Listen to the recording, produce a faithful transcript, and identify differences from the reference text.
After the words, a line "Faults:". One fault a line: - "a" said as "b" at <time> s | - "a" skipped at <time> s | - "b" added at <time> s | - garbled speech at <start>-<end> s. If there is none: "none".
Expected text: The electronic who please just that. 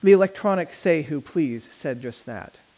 The electronic say who please said just that.
Faults:
- "say" added at 0.7 s
- "said" added at 1.7 s